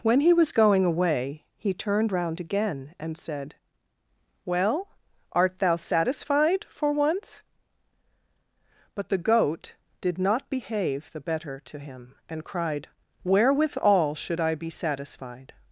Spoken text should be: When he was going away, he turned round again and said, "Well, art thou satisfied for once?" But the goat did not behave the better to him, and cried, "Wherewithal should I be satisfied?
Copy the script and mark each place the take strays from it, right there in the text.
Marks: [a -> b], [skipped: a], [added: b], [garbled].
When he was going away, he turned round again and said, "Well, art thou satisfied for once?" But the goat did not behave the better to him, and cried, "Wherewithal should I be satisfied?